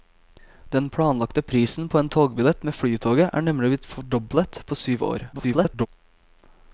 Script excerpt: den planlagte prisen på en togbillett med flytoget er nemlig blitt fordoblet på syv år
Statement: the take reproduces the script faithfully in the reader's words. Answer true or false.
false